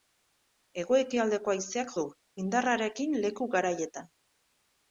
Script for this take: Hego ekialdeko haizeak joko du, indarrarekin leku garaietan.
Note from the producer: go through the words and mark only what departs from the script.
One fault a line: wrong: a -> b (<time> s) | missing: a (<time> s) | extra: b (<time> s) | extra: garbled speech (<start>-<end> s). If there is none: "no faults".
missing: joko (1.9 s)